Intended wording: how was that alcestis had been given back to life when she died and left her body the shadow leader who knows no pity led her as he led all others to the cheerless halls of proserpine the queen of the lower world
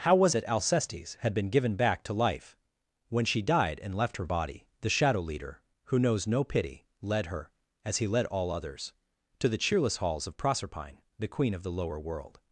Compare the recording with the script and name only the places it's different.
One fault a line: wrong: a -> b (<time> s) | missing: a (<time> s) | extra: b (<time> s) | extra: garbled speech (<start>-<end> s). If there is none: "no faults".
no faults